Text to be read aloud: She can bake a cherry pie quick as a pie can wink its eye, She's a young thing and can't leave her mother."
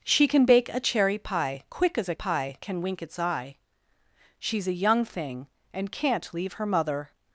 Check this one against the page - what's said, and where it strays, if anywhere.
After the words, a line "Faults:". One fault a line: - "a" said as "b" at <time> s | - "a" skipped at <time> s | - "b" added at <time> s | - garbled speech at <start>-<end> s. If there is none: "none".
She can bake a cherry pie quick as a pie can wink its eye, She's a young thing and can't leave her mother."
Faults:
none